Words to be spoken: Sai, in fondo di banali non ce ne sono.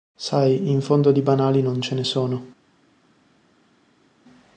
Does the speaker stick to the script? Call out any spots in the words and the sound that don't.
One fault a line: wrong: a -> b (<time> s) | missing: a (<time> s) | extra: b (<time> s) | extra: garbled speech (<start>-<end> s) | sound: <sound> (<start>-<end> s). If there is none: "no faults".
no faults